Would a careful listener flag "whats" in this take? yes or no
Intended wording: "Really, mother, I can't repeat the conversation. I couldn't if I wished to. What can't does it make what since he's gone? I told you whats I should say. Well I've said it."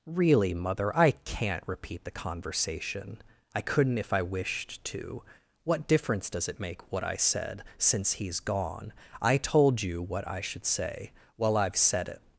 yes